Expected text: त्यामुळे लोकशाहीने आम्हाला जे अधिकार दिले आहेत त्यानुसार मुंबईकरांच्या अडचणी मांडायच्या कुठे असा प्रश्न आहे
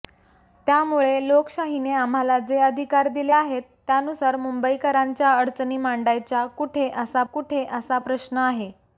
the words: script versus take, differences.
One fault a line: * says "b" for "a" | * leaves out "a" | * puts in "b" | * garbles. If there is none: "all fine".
* puts in "कुठे असा"